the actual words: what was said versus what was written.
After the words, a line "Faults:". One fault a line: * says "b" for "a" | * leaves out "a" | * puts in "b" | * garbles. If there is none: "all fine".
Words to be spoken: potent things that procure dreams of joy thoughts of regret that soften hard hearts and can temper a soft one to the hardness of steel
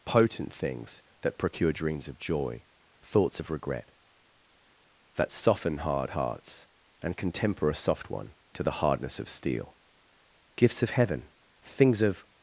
potent things that procure dreams of joy thoughts of regret that soften hard hearts and can temper a soft one to the hardness of steel gifts of heaven things of
Faults:
* puts in "gifts of heaven things of"